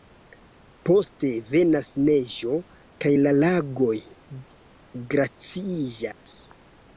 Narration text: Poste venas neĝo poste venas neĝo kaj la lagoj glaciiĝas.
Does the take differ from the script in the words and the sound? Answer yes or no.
yes